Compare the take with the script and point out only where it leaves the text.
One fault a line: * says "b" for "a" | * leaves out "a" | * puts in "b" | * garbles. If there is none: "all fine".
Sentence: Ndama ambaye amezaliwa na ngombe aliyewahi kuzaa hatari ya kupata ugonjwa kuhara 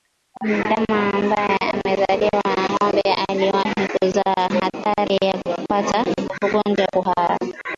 all fine